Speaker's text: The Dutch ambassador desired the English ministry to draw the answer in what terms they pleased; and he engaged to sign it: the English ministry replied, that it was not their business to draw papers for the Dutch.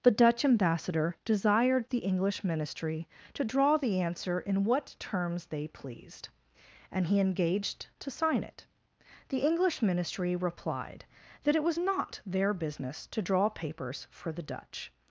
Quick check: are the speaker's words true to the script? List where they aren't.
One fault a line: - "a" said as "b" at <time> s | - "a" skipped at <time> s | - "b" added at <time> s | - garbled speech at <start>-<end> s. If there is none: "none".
none